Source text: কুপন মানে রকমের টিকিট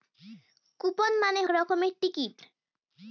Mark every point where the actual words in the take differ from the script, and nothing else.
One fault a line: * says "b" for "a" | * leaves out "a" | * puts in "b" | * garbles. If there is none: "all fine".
all fine